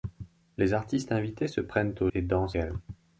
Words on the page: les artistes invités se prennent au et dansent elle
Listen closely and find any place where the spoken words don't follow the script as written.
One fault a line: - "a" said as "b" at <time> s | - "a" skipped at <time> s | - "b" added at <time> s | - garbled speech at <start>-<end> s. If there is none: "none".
none